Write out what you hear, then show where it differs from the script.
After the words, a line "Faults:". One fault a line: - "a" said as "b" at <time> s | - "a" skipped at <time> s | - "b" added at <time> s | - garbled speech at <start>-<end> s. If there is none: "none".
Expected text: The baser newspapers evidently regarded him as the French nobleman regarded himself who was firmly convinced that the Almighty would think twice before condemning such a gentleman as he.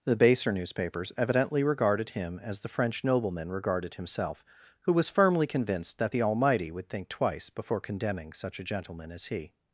The baser newspapers evidently regarded him as the French nobleman regarded himself who was firmly convinced that the Almighty would think twice before condemning such a gentleman as he.
Faults:
none